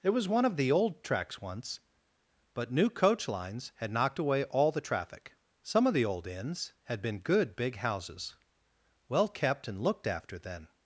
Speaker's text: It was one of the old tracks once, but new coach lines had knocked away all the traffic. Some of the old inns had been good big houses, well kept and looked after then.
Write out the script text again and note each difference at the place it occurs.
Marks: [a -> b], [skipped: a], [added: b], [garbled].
It was one of the old tracks once, but new coach lines had knocked away all the traffic. Some of the old inns had been good big houses, well kept and looked after then.